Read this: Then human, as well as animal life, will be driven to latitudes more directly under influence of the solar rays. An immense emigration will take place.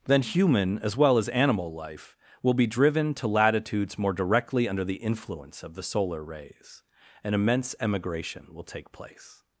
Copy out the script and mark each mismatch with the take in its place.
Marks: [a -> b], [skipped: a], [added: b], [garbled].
Then human, as well as animal life, will be driven to latitudes more directly under [added: the] influence of the solar rays. An immense emigration will take place.